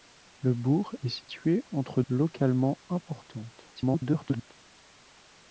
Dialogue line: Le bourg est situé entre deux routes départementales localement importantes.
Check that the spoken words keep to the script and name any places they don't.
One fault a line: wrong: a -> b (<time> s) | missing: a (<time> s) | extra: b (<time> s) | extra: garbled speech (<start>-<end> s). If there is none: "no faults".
missing: deux routes départementales (2.0 s)
extra: garbled speech (3.8-4.5 s)